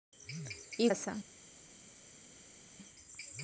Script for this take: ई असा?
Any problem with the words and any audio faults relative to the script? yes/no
no